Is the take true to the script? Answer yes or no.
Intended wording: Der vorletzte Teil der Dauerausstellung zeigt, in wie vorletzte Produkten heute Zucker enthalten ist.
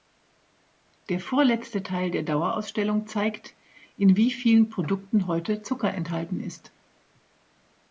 no